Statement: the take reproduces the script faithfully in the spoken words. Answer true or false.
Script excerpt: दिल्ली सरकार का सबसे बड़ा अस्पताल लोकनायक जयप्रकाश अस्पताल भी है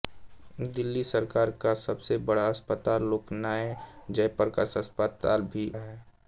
true